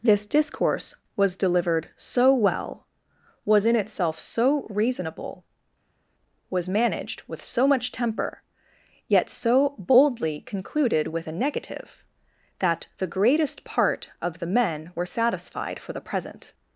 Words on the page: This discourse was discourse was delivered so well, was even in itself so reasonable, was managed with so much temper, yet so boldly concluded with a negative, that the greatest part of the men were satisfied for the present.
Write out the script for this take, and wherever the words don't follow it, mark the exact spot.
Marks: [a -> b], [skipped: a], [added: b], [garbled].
This discourse was [skipped: discourse was] delivered so well, was [skipped: even] in itself so reasonable, was managed with so much temper, yet so boldly concluded with a negative, that the greatest part of the men were satisfied for the present.